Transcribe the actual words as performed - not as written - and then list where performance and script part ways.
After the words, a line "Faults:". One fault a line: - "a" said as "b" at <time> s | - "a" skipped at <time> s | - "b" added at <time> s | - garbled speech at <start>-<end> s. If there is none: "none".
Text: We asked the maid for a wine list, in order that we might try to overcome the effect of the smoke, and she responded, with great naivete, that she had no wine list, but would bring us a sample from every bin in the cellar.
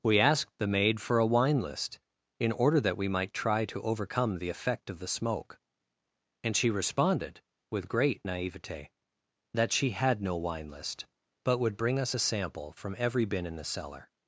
We asked the maid for a wine list, in order that we might try to overcome the effect of the smoke, and she responded, with great naivete, that she had no wine list, but would bring us a sample from every bin in the cellar.
Faults:
none